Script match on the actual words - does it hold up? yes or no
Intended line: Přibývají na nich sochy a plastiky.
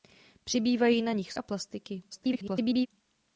no